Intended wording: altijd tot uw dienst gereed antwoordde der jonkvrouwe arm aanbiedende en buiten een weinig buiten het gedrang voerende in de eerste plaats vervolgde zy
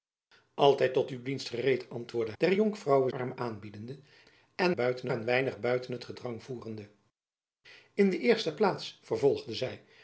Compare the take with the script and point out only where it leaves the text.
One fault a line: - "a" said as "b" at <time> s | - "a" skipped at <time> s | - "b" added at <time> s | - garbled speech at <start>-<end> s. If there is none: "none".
none